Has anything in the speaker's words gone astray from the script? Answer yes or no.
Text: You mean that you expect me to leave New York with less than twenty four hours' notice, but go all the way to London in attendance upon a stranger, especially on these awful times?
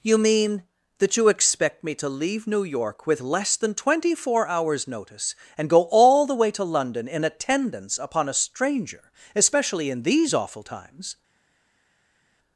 yes